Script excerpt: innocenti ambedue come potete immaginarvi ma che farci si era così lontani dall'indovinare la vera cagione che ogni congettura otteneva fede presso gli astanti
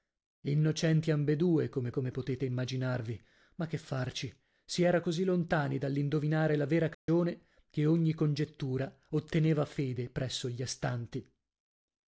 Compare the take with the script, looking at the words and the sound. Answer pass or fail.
fail